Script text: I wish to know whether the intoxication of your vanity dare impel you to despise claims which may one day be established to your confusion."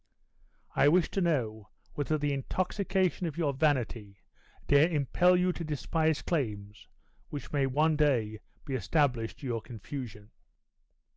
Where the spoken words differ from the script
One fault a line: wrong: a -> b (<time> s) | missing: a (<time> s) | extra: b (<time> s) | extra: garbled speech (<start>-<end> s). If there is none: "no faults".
no faults